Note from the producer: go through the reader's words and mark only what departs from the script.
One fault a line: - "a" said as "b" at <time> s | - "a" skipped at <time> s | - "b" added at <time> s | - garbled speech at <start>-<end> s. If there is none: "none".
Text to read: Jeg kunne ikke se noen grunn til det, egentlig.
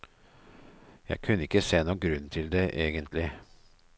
none